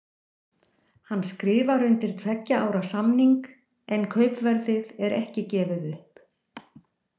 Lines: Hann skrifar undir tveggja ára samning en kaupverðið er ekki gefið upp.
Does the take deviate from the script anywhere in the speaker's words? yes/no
no